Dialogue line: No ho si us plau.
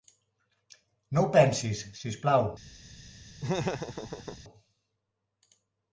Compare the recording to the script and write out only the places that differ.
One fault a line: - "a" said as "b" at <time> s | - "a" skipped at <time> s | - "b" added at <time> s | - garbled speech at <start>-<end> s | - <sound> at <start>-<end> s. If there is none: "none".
- "pensis" added at 1.4 s
- laugh at 3.4-4.4 s